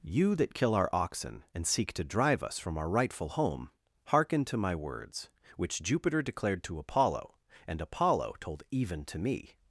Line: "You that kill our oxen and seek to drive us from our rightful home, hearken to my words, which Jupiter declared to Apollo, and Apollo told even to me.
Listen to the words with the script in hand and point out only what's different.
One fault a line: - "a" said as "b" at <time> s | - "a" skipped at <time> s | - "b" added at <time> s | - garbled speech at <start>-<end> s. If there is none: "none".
none